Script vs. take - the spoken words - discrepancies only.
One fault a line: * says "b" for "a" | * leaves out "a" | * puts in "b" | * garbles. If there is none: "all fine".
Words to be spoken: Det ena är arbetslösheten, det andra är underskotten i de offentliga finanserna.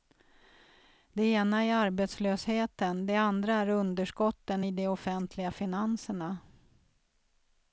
all fine